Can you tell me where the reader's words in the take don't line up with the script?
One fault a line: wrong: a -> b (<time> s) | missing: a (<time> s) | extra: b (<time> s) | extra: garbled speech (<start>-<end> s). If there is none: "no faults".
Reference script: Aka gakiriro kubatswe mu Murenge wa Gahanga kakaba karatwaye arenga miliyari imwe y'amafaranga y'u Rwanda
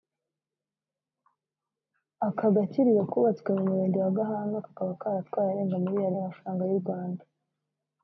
missing: imwe (6.2 s)